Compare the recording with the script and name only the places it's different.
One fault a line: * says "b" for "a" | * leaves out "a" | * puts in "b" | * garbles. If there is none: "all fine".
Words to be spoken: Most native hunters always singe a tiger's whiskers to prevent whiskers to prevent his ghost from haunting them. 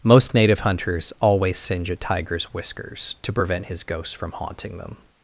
* leaves out "whiskers to prevent"